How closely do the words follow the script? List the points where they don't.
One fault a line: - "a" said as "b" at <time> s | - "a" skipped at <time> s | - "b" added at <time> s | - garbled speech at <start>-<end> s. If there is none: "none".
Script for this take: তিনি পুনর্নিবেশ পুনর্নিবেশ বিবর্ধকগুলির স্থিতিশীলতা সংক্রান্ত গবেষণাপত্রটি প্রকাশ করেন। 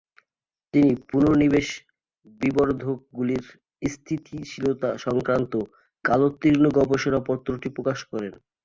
- "পুনর্নিবেশ" skipped at 1.7 s
- "কালোত্তীর্ণ" added at 6.0 s